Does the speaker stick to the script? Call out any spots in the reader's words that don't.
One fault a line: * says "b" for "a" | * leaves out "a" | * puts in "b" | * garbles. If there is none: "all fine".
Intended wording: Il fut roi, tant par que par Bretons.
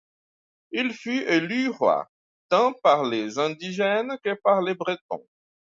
* puts in "élu"
* puts in "les indigènes"
* puts in "les"